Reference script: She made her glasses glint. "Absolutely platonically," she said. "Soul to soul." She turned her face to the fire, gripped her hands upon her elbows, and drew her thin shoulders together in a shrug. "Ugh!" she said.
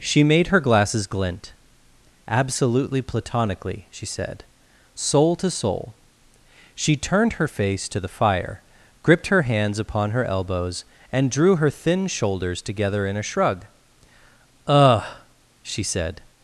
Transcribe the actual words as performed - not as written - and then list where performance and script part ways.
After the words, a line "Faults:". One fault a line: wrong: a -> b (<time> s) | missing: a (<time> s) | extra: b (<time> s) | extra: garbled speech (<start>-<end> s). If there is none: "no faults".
She made her glasses glint. "Absolutely platonically," she said. "Soul to soul." She turned her face to the fire, gripped her hands upon her elbows, and drew her thin shoulders together in a shrug. "Ugh!" she said.
Faults:
no faults